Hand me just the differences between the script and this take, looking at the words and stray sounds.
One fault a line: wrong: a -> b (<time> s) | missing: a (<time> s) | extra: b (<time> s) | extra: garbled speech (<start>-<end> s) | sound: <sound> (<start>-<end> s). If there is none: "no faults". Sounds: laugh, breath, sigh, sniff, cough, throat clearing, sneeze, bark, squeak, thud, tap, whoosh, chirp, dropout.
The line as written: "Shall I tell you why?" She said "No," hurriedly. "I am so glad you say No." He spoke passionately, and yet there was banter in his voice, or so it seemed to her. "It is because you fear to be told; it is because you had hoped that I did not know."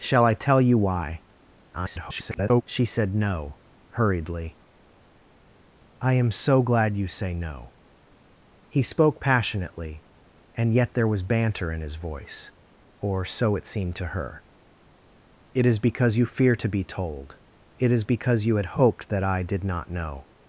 extra: garbled speech (1.7-2.6 s)